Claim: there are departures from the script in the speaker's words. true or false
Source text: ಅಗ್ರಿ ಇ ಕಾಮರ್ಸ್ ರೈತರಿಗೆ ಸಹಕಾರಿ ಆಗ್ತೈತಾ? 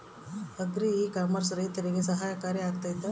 false